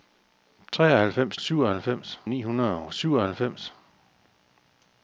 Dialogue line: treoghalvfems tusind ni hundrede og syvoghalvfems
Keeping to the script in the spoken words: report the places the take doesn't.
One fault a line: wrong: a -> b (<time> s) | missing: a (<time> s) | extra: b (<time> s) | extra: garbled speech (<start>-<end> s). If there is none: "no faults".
wrong: tusind -> syvoghalvfems (1.4 s)